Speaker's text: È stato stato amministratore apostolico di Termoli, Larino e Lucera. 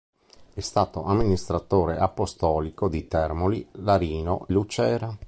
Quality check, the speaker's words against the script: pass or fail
fail